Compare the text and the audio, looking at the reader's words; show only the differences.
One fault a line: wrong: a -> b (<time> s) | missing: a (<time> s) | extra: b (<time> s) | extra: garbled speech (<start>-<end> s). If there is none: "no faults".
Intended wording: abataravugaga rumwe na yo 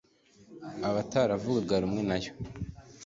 no faults